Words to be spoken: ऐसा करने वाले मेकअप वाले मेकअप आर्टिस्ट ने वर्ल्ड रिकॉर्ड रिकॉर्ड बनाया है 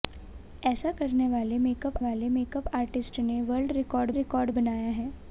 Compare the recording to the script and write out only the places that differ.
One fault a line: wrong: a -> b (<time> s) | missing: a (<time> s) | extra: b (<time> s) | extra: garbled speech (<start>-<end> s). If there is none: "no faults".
no faults